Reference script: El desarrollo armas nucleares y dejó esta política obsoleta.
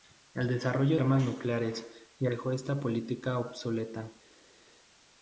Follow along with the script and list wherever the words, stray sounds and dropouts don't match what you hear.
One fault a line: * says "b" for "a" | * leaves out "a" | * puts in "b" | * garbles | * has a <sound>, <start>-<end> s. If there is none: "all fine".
all fine